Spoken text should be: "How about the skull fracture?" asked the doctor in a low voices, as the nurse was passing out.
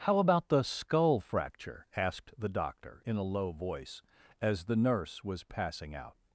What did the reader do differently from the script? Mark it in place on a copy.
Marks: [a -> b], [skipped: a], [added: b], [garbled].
"How about the skull fracture?" asked the doctor in a low [voices, -> voice] as the nurse was passing out.